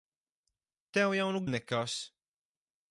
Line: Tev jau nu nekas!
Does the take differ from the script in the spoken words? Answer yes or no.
no